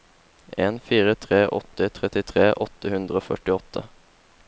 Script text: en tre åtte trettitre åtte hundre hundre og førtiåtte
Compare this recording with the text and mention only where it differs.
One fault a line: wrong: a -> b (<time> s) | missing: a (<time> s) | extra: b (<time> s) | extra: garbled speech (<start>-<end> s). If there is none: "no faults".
extra: fire (0.9 s)
missing: hundre (3.2 s)